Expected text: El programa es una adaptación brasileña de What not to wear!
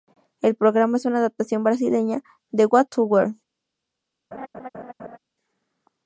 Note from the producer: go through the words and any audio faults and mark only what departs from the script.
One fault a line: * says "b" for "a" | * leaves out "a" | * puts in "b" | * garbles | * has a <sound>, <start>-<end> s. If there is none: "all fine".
* leaves out "not"
* has a laugh, 4.3-5.2 s